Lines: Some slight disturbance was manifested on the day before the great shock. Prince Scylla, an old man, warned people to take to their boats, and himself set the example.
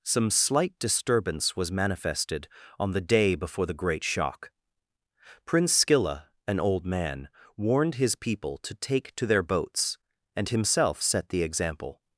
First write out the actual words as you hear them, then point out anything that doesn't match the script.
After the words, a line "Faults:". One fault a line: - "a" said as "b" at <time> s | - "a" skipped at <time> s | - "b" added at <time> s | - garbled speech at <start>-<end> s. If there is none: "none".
Some slight disturbance was manifested on the day before the great shock. Prince Scylla, an old man, warned his people to take to their boats, and himself set the example.
Faults:
- "his" added at 8.0 s